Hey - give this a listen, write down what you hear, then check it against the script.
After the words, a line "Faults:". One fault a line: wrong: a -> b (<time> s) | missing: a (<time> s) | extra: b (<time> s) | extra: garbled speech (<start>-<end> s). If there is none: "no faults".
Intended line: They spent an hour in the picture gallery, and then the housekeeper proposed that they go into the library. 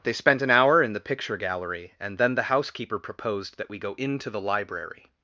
They spent an hour in the picture gallery, and then the housekeeper proposed that we go into the library.
Faults:
wrong: they -> we (3.7 s)